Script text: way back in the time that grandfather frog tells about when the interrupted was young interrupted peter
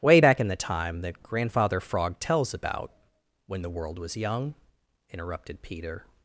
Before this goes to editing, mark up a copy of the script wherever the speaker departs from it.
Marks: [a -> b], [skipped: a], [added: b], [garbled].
way back in the time that grandfather frog tells about when the [interrupted -> world] was young interrupted peter